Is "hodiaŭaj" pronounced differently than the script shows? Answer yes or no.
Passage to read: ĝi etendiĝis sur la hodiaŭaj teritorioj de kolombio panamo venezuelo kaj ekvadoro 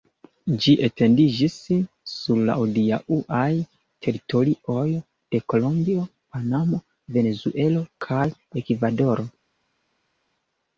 no